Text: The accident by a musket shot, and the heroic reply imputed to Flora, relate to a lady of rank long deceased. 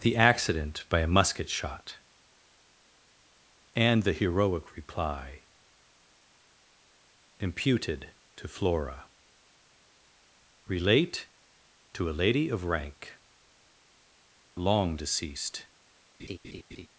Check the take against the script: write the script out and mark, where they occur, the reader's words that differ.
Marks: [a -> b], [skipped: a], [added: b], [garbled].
The accident by a musket shot, and the heroic reply imputed to Flora, relate to a lady of rank long deceased.